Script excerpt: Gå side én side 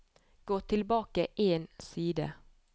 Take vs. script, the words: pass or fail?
fail